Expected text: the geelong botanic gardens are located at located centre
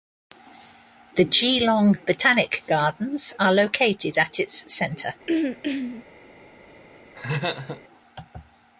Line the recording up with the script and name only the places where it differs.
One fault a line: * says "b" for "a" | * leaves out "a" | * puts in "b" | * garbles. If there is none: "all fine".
* says "its" for "located"